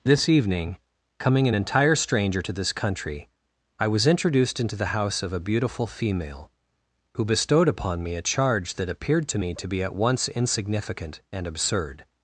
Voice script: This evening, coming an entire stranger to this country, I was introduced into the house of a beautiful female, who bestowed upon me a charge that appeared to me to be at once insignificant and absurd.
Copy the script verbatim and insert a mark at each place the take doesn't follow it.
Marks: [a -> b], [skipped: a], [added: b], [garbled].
This evening, coming an entire stranger to this country, I was introduced into the house of a beautiful female, who bestowed upon me a charge that appeared to me to be at once insignificant and absurd.